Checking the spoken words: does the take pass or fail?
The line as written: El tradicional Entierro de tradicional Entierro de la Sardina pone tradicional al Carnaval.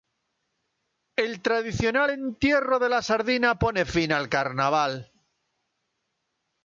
fail